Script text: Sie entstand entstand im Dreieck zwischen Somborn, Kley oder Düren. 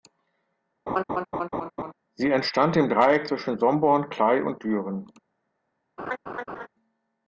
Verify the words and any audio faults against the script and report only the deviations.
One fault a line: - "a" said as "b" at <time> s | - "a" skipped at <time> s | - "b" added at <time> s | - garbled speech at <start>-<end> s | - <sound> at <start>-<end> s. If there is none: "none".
- laugh at 0.9-1.9 s
- "entstand" skipped at 2.8 s
- "oder" said as "und" at 4.4 s
- laugh at 6.0-6.7 s